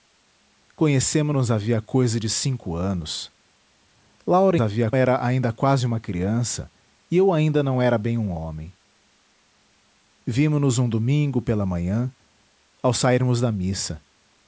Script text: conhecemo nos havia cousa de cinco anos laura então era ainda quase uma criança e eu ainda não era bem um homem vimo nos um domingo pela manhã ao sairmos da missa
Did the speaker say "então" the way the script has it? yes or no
no